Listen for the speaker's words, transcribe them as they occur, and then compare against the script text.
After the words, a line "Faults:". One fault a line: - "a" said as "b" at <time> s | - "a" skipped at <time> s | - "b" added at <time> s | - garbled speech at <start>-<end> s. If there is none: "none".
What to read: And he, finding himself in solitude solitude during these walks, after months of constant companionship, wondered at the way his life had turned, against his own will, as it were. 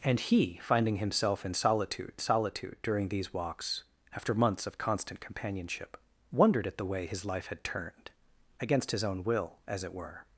And he, finding himself in solitude solitude during these walks, after months of constant companionship, wondered at the way his life had turned, against his own will, as it were.
Faults:
none